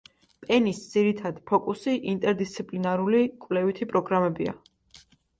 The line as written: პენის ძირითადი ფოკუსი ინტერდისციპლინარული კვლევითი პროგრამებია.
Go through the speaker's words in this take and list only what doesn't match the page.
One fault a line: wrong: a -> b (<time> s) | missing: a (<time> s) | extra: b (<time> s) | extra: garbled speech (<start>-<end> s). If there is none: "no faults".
no faults